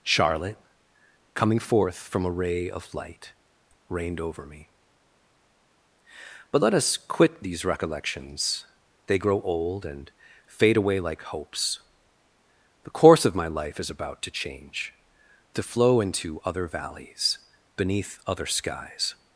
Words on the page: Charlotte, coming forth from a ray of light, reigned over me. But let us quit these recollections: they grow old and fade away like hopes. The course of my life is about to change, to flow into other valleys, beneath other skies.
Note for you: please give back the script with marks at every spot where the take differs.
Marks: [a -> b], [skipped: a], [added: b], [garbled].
Charlotte, coming forth from a ray of light, reigned over me. But let us quit these recollections: they grow old and fade away like hopes. The course of my life is about to change, to flow into other valleys, beneath other skies.